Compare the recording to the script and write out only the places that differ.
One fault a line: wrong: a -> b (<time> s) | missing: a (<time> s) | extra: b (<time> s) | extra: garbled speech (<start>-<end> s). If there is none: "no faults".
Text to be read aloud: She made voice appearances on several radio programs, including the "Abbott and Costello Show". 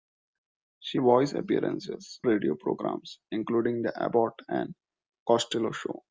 missing: made (1.0 s)
missing: on several (2.2 s)